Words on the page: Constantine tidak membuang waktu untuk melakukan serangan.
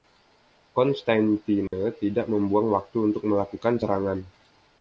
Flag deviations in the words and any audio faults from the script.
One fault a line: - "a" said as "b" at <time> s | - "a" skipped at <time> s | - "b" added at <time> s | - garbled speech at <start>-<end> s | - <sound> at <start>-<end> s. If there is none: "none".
- dropout at 1.7-1.7 s